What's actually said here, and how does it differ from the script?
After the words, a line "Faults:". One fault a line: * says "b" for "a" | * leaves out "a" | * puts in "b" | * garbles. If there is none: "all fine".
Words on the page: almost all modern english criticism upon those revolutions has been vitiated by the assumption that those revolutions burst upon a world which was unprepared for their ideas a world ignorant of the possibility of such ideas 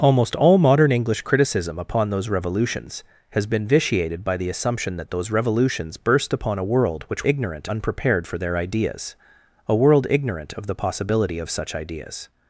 almost all modern english criticism upon those revolutions has been vitiated by the assumption that those revolutions burst upon a world which ignorant unprepared for their ideas a world ignorant of the possibility of such ideas
Faults:
* says "ignorant" for "was"